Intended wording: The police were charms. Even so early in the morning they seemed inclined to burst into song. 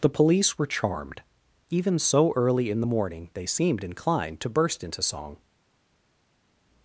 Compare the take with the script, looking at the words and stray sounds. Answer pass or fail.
fail